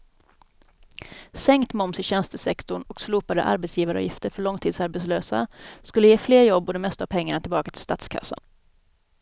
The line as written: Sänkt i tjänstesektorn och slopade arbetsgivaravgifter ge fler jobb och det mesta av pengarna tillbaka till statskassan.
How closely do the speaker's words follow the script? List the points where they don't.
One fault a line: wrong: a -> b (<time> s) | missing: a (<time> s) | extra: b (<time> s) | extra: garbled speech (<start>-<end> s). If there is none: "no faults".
extra: moms (1.7 s)
extra: för långtidsarbetslösa skulle (4.3 s)